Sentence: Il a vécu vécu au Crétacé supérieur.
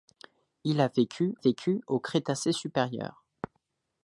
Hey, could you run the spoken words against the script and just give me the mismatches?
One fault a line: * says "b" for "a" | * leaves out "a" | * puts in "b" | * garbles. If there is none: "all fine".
all fine